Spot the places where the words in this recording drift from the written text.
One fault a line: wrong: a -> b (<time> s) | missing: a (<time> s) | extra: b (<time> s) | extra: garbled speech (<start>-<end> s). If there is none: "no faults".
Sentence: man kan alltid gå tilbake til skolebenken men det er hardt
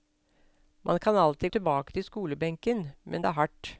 missing: gå (1.5 s)